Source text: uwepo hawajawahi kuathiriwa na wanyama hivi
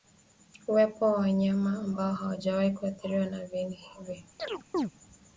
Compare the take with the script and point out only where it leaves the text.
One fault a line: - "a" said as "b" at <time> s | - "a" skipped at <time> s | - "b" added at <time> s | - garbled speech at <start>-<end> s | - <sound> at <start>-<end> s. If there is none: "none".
- "wa wanyama ambao" added at 1.1 s
- "wanyama" said as "viini" at 3.4 s
- chirp at 4.4-4.9 s